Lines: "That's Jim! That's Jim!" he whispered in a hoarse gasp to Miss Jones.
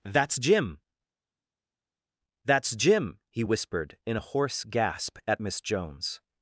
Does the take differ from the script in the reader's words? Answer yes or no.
yes